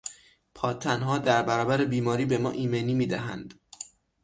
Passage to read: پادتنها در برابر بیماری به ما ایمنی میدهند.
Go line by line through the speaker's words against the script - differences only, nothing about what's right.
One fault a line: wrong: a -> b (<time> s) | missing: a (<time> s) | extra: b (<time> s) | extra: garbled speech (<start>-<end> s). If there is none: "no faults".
no faults